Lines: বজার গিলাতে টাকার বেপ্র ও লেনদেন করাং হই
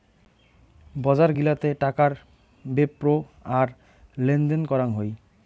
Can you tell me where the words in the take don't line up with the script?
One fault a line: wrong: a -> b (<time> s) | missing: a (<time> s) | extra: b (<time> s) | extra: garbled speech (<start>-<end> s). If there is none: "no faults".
wrong: ও -> আর (3.6 s)